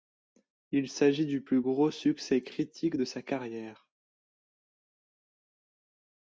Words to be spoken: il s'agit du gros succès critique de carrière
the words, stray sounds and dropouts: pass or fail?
fail